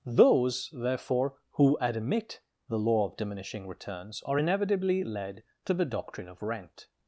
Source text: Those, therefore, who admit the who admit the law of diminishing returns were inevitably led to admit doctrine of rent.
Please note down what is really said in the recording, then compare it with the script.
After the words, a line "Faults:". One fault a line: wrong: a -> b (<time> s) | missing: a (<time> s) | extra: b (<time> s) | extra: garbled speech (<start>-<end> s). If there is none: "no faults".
Those, therefore, who admit the law of diminishing returns are inevitably led to the doctrine of rent.
Faults:
missing: who admit the (2.8 s)
wrong: were -> are (4.2 s)
wrong: admit -> the (5.7 s)